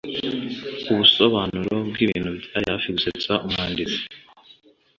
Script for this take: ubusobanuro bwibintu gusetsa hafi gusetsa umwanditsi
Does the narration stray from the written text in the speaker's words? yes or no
yes